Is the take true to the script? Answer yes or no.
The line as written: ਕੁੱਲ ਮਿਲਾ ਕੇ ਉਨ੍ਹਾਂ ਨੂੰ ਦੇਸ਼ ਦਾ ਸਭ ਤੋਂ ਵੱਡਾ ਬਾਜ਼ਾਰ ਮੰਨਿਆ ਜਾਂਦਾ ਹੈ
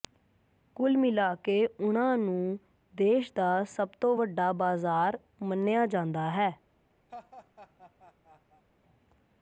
yes